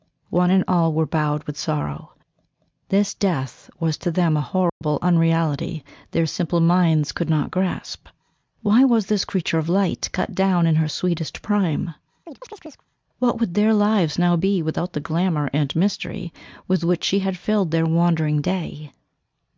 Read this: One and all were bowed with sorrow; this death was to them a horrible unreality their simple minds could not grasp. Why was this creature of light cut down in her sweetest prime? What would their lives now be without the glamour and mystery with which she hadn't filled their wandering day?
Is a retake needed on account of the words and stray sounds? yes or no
yes